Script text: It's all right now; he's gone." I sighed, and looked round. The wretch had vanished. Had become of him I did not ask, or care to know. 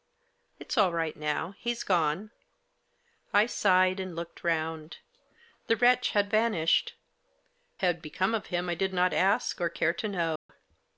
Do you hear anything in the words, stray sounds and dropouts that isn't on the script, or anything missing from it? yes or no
yes